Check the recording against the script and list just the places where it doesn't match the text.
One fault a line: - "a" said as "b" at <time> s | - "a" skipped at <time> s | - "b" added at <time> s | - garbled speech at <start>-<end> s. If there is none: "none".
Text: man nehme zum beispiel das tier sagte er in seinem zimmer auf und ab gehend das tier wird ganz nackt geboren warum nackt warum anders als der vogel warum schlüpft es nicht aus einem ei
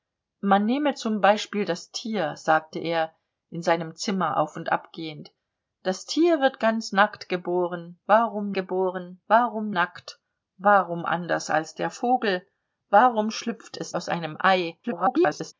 - "geboren warum" added at 8.5 s
- "nicht" skipped at 13.9 s
- garbled speech at 14.8-15.5 s